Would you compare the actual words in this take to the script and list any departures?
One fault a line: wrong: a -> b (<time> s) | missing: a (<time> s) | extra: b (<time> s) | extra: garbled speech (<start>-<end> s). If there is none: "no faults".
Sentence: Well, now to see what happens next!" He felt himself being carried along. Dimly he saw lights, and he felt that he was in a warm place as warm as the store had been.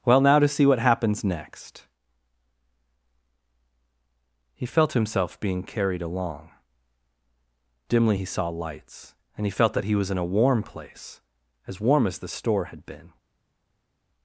no faults